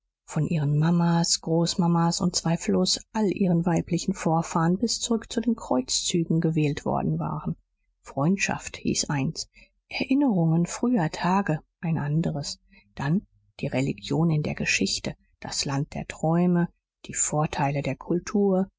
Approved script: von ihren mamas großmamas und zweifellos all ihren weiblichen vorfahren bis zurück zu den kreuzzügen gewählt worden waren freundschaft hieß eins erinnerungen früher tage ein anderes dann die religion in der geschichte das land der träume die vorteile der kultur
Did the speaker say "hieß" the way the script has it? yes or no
yes